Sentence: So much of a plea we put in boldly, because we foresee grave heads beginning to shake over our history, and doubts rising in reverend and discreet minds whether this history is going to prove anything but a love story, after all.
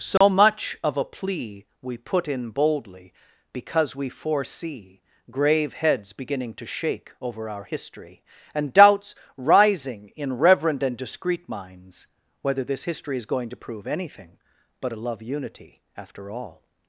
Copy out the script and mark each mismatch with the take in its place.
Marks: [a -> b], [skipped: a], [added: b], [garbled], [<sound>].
So [dropout] much of a plea we put in boldly, because we foresee grave heads beginning to shake over our history, and doubts rising in reverend and discreet minds whether this history is going to prove anything but a love [story, -> unity] after all.